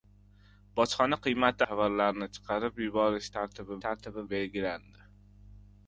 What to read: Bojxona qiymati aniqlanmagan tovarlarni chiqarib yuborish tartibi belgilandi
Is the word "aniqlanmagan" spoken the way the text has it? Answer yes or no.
no